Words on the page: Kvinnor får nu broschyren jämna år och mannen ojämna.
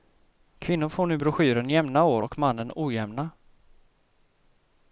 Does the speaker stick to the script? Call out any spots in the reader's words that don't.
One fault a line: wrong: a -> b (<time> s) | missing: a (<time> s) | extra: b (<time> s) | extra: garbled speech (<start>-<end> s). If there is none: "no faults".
no faults